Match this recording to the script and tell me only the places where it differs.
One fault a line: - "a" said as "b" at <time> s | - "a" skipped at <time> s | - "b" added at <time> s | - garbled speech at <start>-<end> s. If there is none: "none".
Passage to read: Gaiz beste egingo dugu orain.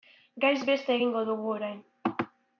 none